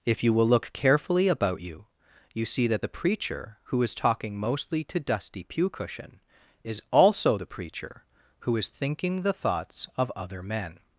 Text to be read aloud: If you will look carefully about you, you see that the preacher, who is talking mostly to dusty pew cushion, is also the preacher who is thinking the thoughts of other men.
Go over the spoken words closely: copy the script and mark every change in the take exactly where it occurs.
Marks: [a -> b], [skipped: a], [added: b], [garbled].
If you will look carefully about you, you see that the preacher, who is talking mostly to dusty pew cushion, is also the preacher who is thinking the thoughts of other men.